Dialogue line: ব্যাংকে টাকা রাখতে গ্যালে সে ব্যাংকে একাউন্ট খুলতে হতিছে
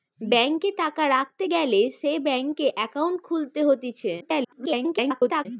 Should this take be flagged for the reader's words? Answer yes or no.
yes